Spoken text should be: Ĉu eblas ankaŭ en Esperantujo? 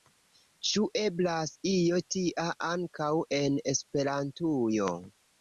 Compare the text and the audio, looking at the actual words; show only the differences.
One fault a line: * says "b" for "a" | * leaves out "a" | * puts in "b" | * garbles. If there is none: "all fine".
* puts in "io tia"